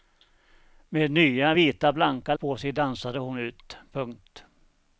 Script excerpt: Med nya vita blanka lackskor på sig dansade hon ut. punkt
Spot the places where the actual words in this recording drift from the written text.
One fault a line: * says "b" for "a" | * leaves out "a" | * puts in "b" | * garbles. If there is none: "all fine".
* leaves out "lackskor"